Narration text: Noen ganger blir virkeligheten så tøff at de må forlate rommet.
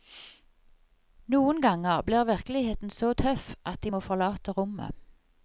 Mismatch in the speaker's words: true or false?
false